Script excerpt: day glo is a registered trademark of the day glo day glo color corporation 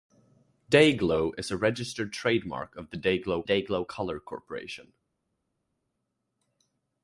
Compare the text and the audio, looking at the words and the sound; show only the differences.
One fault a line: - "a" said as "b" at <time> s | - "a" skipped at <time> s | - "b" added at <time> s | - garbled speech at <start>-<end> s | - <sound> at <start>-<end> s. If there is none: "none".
none